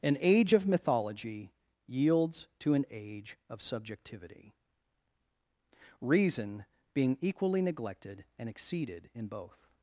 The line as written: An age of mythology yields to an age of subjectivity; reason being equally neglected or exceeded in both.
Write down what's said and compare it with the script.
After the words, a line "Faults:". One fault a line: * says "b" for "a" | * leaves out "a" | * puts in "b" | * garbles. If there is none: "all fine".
An age of mythology yields to an age of subjectivity; reason being equally neglected and exceeded in both.
Faults:
* says "and" for "or"